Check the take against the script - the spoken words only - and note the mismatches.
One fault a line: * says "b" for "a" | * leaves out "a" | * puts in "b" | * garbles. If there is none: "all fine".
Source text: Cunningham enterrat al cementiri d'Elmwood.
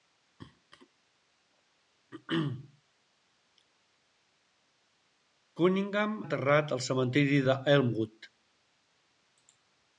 all fine